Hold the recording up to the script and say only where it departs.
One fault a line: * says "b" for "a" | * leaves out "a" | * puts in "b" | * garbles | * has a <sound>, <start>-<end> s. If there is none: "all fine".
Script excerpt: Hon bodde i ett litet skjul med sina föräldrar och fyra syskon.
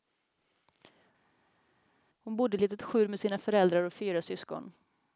all fine